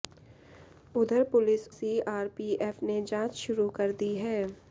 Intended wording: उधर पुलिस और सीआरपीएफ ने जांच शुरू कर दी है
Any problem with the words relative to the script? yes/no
yes